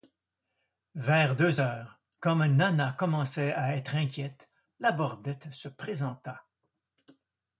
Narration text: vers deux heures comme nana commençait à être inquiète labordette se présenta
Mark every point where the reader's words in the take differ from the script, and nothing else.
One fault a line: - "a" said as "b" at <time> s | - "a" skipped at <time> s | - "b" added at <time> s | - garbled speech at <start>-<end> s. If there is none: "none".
none